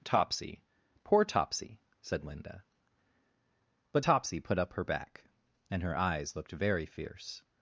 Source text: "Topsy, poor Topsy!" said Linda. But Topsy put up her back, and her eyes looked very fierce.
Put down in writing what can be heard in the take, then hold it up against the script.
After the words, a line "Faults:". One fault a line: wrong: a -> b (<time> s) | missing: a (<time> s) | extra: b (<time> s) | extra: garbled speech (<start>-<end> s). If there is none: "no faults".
"Topsy, poor Topsy!" said Linda. But Topsy put up her back, and her eyes looked very fierce.
Faults:
no faults